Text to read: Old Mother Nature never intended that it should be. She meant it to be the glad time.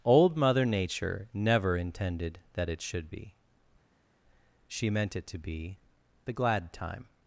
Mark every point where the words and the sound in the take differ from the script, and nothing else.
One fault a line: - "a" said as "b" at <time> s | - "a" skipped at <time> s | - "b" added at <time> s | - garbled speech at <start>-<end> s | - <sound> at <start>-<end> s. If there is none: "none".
none